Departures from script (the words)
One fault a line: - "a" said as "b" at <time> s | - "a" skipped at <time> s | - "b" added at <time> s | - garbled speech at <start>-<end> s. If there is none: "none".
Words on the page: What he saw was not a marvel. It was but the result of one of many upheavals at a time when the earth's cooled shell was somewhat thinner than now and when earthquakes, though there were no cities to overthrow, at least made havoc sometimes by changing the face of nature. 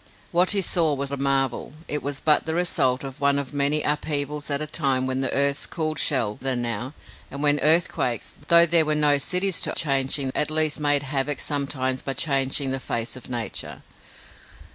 - "not" skipped at 1.1 s
- "was somewhat thinner" skipped at 6.4 s
- "overthrow" said as "changing" at 9.7 s